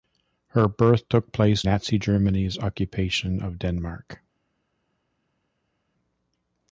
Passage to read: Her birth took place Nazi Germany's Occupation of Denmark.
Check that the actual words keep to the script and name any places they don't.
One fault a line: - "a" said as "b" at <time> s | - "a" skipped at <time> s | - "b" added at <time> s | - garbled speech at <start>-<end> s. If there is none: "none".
none